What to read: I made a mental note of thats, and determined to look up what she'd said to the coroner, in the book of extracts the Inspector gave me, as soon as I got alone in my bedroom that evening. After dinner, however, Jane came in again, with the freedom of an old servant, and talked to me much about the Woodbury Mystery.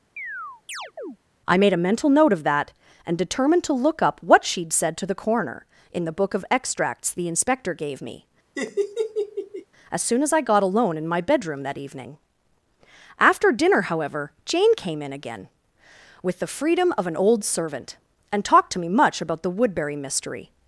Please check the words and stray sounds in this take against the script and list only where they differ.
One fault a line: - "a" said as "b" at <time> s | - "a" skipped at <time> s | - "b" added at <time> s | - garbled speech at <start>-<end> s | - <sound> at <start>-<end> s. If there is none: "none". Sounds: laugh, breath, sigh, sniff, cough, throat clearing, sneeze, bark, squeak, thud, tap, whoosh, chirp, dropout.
- chirp at 0.2-1.2 s
- "thats" said as "that" at 2.4 s
- laugh at 8.6-9.7 s